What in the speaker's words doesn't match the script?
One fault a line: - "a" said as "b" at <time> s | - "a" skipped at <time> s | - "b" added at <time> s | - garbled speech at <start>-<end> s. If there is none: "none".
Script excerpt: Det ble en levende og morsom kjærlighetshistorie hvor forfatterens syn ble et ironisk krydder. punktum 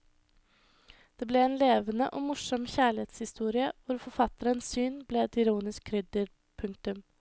none